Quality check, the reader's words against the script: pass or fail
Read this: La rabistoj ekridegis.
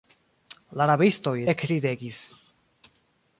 pass